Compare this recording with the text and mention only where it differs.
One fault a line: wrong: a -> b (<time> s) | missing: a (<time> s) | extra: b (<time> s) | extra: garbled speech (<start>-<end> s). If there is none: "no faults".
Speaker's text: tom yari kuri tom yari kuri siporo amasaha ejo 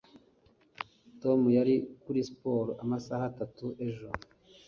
missing: tom yari kuri (2.2 s)
extra: atatu (3.3 s)